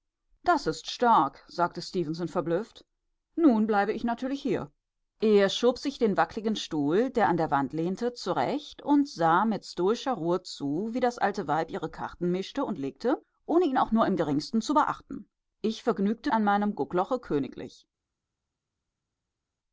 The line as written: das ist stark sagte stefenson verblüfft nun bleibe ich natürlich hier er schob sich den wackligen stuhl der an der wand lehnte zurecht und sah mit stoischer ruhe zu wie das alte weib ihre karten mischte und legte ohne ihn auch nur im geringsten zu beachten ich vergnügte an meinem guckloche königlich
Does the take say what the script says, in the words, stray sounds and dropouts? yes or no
yes